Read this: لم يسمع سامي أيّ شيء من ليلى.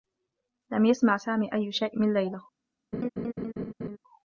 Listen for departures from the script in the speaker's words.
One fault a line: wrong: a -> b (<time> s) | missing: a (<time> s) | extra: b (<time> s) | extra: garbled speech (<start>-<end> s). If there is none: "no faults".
no faults